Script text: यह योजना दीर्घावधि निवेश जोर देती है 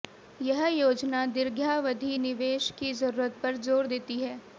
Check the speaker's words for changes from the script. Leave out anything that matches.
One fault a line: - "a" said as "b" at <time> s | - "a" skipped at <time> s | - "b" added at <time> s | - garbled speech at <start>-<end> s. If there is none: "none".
- "की जरूरत पर" added at 2.8 s